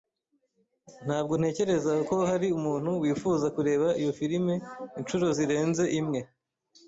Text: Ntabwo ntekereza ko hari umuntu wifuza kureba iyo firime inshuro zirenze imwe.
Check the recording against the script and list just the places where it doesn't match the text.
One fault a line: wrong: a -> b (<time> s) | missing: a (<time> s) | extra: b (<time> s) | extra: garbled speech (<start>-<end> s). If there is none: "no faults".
no faults